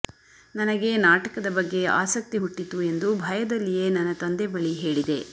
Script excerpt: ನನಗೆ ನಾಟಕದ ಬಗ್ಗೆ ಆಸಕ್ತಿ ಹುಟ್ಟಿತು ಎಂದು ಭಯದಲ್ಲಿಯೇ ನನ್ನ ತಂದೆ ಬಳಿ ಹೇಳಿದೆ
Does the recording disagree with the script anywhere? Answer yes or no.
no